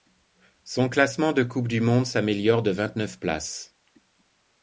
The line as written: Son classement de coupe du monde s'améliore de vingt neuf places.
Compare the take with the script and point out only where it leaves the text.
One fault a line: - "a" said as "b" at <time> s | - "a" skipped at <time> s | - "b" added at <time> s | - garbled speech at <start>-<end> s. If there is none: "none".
none